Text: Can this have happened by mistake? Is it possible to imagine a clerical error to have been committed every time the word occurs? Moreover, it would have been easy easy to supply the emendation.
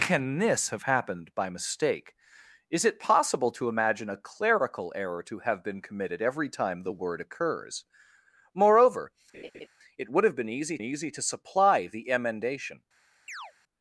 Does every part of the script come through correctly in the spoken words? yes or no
yes